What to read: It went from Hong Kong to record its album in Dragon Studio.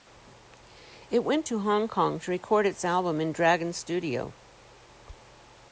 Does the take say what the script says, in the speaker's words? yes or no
no